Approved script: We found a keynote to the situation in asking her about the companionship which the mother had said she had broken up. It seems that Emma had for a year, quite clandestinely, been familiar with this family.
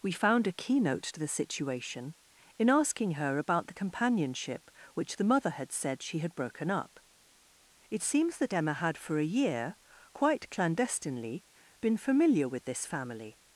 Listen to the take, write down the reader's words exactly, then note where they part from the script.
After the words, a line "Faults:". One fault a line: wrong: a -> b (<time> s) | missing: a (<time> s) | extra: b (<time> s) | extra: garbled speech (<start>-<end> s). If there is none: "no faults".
We found a keynote to the situation in asking her about the companionship which the mother had said she had broken up. It seems that Emma had for a year, quite clandestinely, been familiar with this family.
Faults:
no faults